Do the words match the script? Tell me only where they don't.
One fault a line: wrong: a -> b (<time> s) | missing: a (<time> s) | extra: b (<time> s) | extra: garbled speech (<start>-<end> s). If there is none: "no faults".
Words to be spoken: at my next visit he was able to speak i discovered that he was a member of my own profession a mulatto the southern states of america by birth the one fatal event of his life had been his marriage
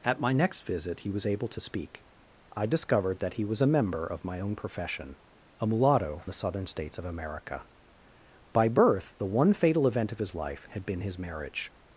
no faults